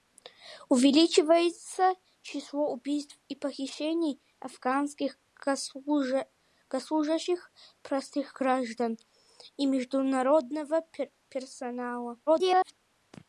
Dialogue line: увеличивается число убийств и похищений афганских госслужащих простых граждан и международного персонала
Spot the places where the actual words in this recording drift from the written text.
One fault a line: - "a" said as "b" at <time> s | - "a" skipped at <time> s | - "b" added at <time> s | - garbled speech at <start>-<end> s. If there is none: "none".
- garbled speech at 12.3-12.7 s